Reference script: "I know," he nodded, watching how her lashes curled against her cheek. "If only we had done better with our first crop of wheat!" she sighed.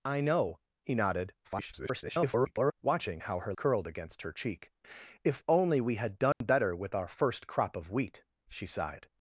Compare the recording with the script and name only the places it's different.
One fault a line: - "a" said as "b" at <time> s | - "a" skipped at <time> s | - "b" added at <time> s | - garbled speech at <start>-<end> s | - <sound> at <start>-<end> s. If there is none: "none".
- garbled speech at 1.4-2.7 s
- "lashes" skipped at 3.5 s
- dropout at 6.3-6.4 s